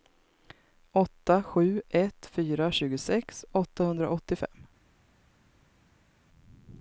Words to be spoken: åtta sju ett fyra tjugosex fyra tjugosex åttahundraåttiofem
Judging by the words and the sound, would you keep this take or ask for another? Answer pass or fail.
fail